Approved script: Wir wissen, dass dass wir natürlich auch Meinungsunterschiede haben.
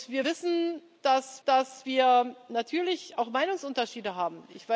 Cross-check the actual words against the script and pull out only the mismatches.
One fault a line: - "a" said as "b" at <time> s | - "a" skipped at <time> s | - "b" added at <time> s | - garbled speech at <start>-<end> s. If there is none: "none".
none